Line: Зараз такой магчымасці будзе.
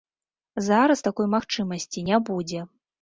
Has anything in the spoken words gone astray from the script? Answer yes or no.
yes